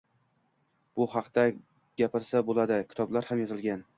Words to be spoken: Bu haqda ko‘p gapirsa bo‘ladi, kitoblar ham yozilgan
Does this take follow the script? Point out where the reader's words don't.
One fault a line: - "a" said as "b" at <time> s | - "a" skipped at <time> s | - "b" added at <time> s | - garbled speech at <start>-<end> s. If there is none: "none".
- "ko‘p" skipped at 1.4 s